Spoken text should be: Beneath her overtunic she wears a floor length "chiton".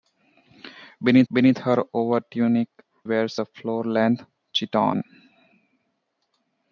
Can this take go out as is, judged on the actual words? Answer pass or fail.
fail